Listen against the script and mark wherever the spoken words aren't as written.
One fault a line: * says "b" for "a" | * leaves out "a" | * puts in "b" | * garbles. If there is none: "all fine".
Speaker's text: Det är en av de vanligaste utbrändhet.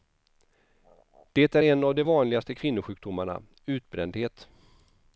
* puts in "kvinnosjukdomarna"